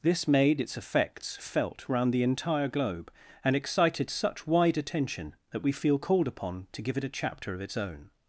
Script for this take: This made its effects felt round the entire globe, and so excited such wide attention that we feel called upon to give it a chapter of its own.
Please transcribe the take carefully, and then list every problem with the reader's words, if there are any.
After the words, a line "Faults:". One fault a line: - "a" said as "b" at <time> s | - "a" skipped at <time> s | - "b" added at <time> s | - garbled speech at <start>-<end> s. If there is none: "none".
This made its effects felt round the entire globe, and excited such wide attention that we feel called upon to give it a chapter of its own.
Faults:
- "so" skipped at 3.5 s